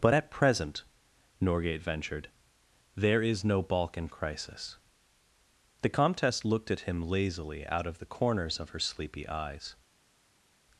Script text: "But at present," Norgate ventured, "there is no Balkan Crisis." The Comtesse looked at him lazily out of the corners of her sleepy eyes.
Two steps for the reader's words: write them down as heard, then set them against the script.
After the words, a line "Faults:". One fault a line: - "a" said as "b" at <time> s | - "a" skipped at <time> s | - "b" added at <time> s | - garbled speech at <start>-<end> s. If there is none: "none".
"But at present," Norgate ventured, "there is no Balkan Crisis." The Comtesse looked at him lazily out of the corners of her sleepy eyes.
Faults:
none